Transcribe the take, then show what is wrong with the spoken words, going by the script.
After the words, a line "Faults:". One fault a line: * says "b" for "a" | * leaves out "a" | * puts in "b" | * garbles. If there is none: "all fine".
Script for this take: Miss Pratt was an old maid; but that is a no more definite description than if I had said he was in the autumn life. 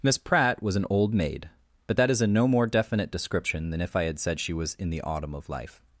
Miss Pratt was an old maid; but that is a no more definite description than if I had said she was in the autumn of life.
Faults:
* says "she" for "he"
* puts in "of"